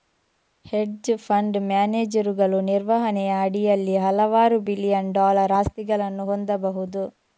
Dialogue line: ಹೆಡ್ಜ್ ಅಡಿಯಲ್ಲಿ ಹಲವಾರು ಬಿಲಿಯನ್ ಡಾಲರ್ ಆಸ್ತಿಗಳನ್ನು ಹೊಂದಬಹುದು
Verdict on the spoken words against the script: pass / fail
fail